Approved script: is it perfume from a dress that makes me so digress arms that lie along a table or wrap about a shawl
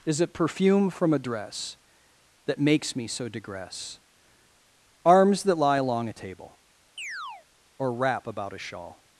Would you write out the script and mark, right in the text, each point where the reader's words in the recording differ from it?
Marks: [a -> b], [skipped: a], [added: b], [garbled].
is it perfume from a dress that makes me so digress arms that lie along a table or wrap about a shawl